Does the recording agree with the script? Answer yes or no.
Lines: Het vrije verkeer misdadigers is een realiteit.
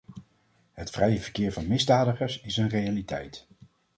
no